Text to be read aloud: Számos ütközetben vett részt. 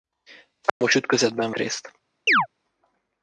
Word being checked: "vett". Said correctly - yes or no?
no